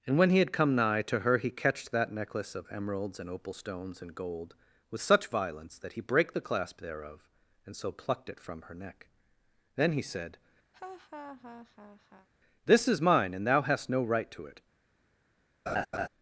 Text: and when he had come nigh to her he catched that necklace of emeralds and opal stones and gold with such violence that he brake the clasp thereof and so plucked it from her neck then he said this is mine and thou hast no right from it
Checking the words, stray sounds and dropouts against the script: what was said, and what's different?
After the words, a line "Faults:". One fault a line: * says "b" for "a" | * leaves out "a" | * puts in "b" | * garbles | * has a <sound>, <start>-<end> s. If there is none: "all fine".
and when he had come nigh to her he catched that necklace of emeralds and opal stones and gold with such violence that he brake the clasp thereof and so plucked it from her neck then he said this is mine and thou hast no right to it
Faults:
* has a laugh, 10.7-12.3 s
* says "to" for "from"
* has a laugh, 15.7-16.1 s